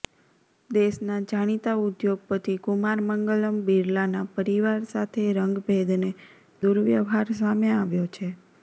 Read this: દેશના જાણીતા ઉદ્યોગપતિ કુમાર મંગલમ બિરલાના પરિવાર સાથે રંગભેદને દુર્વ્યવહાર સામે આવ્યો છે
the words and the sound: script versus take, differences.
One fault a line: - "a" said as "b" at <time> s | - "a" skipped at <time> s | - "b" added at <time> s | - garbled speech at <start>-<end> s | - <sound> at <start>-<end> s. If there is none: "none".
none